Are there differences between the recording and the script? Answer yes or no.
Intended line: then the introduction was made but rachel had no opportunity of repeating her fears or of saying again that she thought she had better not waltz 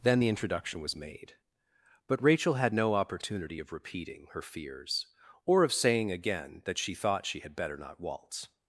no